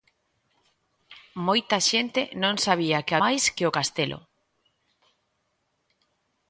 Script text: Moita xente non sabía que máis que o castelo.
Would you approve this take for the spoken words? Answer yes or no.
yes